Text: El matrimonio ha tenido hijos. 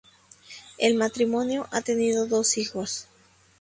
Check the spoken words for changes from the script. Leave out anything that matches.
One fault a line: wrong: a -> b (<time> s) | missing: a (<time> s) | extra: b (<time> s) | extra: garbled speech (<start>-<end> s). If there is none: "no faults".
extra: dos (2.2 s)